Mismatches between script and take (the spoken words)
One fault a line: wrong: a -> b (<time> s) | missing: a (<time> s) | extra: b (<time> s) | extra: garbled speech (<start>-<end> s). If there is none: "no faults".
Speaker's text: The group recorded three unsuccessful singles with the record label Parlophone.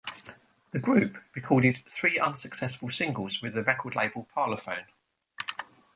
no faults